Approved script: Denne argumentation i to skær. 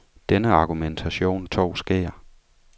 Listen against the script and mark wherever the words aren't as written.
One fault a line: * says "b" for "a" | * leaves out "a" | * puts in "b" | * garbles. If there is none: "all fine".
all fine